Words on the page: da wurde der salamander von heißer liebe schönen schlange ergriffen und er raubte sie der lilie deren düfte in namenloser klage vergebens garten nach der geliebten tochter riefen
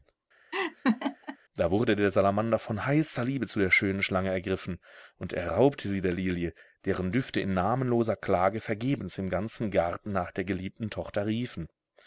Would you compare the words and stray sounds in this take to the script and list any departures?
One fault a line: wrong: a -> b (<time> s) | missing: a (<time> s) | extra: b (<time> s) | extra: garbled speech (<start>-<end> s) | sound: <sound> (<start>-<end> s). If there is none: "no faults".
sound: laugh (0.5-1.4 s)
extra: zu der (3.5 s)
extra: im ganzen (9.2 s)